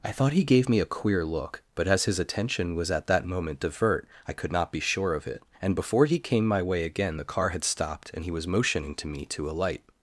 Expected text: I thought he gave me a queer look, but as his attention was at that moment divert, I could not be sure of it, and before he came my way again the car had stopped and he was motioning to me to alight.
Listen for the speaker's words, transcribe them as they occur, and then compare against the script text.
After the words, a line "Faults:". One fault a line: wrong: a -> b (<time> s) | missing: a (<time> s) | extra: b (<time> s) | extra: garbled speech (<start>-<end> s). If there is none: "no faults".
I thought he gave me a queer look, but as his attention was at that moment divert, I could not be sure of it, and before he came my way again the car had stopped and he was motioning to me to alight.
Faults:
no faults